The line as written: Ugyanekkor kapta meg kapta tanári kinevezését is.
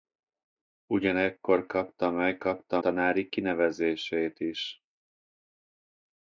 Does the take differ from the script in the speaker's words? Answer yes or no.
no